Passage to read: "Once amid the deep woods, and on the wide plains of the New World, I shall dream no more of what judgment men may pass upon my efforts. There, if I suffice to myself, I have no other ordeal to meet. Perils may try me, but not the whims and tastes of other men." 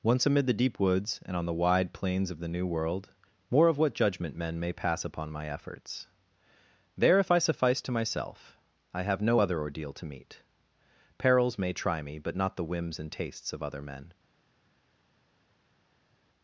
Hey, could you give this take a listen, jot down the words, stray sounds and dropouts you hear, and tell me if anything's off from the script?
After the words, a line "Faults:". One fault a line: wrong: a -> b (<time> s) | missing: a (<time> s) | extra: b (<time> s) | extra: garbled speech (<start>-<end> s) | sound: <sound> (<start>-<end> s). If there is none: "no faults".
"Once amid the deep woods, and on the wide plains of the New World, more of what judgment men may pass upon my efforts. There, if I suffice to myself, I have no other ordeal to meet. Perils may try me, but not the whims and tastes of other men."
Faults:
missing: I shall dream no (3.1 s)